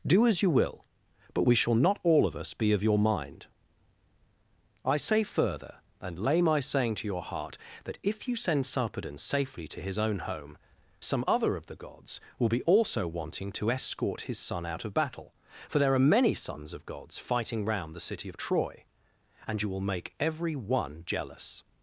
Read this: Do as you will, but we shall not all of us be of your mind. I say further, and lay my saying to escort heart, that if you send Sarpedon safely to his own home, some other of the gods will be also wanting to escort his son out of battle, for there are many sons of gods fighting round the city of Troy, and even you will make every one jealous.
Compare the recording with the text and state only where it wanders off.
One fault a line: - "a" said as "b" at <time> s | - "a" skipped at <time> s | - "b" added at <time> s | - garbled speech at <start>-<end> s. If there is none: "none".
- "escort" said as "your" at 7.1 s
- "even" skipped at 19.6 s